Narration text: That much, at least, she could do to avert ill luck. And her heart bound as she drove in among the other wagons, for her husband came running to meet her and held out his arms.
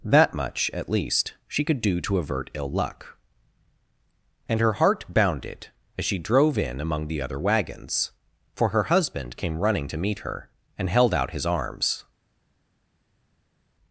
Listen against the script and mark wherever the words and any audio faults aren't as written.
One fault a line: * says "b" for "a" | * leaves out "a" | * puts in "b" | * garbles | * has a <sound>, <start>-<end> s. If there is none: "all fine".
* says "bounded" for "bound"